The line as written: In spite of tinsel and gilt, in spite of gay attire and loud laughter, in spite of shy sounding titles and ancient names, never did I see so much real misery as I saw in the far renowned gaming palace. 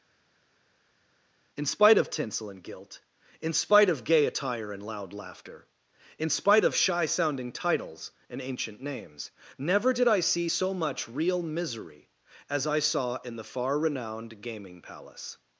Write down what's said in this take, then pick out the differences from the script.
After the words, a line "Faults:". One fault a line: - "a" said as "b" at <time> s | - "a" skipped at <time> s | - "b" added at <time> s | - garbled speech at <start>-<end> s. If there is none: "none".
In spite of tinsel and gilt, in spite of gay attire and loud laughter, in spite of shy sounding titles and ancient names, never did I see so much real misery as I saw in the far renowned gaming palace.
Faults:
none